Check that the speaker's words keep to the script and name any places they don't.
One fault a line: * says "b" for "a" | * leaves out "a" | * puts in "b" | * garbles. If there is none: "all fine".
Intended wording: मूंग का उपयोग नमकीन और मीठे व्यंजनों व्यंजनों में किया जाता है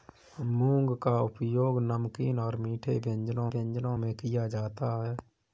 all fine